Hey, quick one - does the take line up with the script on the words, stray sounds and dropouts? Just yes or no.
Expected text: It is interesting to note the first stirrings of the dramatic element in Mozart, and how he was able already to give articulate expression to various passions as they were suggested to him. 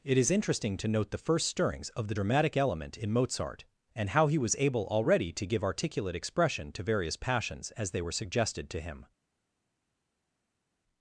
yes